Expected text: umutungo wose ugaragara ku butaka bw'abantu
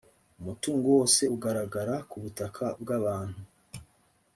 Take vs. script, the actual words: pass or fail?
pass